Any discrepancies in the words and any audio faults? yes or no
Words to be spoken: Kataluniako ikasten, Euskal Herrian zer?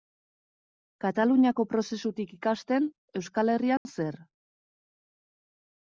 yes